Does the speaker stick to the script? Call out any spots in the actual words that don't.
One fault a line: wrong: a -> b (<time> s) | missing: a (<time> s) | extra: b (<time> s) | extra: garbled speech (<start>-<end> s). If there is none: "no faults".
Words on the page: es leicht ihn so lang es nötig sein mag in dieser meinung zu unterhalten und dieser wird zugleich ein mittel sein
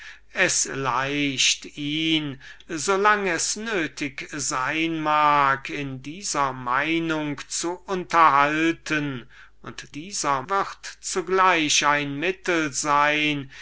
no faults